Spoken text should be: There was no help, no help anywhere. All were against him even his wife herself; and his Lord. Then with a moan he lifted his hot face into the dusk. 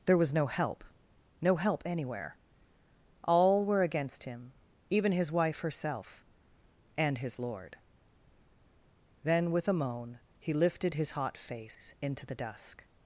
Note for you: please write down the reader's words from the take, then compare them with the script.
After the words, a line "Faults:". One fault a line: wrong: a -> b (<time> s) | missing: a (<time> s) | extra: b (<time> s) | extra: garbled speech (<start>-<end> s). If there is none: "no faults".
There was no help, no help anywhere. All were against him even his wife herself; and his Lord. Then with a moan he lifted his hot face into the dusk.
Faults:
no faults